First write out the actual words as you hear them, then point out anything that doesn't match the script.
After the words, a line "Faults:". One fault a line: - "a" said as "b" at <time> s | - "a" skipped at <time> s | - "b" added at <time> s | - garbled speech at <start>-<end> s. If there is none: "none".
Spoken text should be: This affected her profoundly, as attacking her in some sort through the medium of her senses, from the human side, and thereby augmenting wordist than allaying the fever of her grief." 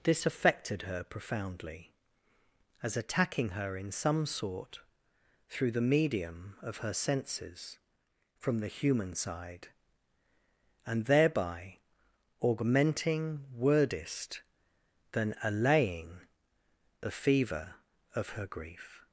This affected her profoundly, as attacking her in some sort through the medium of her senses, from the human side, and thereby augmenting wordist than allaying the fever of her grief."
Faults:
none